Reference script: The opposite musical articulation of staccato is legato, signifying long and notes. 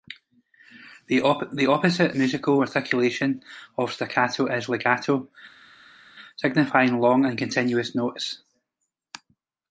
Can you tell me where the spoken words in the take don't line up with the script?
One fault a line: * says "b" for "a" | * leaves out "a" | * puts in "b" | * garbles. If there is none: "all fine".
* puts in "continuous"